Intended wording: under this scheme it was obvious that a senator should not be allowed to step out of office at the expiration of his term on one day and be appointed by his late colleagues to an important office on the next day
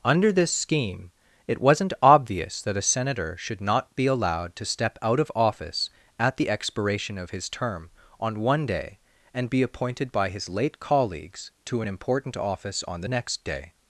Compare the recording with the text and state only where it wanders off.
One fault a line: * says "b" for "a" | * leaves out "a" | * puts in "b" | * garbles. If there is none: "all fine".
* says "wasn't" for "was"